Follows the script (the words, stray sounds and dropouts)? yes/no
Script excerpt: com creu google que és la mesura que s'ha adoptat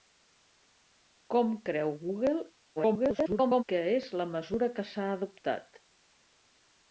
no